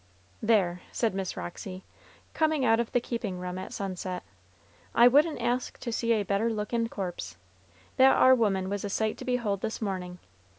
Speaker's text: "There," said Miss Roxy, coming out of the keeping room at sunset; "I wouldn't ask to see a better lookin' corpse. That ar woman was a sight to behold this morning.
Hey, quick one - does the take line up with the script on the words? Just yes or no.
yes